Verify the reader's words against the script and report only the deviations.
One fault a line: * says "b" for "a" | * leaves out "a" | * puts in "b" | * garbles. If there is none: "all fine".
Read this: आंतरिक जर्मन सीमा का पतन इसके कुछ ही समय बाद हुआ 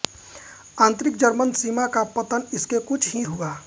* leaves out "समय बाद"